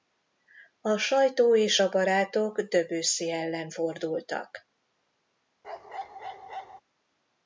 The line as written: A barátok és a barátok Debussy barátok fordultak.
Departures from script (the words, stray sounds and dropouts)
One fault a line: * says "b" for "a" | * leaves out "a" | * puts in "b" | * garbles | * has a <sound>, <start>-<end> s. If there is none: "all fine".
* says "sajtó" for "barátok"
* says "ellen" for "barátok"
* has a bark, 5.6-6.8 s